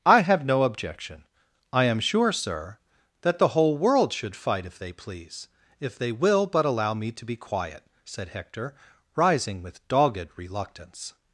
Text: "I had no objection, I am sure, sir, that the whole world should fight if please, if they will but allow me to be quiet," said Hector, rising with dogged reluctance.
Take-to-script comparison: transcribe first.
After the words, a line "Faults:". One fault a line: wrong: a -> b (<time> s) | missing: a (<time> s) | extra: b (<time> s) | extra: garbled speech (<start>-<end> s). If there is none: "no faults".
"I have no objection, I am sure, sir, that the whole world should fight if they please, if they will but allow me to be quiet," said Hector, rising with dogged reluctance.
Faults:
wrong: had -> have (0.2 s)
extra: they (4.8 s)